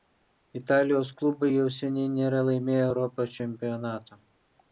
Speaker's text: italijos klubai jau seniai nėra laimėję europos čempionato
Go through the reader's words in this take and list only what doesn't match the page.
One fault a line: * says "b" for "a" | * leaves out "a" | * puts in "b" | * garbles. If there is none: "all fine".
all fine